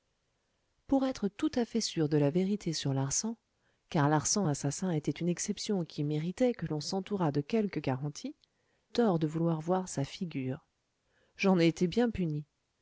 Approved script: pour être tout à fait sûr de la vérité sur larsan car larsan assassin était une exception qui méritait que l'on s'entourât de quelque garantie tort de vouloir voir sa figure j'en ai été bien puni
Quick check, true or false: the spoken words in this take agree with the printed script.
true